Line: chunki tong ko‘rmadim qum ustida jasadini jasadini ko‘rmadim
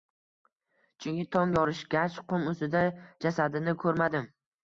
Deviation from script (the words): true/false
true